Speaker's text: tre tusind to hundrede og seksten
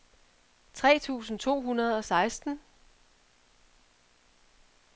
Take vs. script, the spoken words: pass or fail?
pass